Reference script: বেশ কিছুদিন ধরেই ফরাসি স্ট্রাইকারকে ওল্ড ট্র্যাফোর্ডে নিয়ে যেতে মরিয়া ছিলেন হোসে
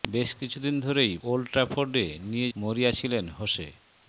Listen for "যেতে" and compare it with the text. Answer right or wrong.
wrong